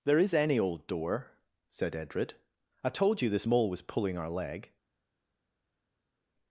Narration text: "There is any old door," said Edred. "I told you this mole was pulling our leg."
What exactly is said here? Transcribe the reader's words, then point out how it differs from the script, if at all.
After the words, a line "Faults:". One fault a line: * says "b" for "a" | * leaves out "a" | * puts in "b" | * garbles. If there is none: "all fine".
"There is any old door," said Edred. "I told you this mole was pulling our leg."
Faults:
all fine